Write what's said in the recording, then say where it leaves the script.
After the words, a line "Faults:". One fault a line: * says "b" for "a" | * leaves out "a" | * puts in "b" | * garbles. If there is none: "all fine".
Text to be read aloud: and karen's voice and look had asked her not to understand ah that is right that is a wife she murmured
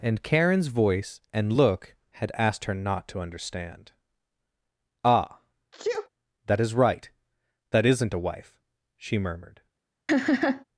and karen's voice and look had asked her not to understand ah that is right that isn't a wife she murmured
Faults:
* says "isn't" for "is"